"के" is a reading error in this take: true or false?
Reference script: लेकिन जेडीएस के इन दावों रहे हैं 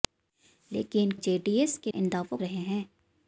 false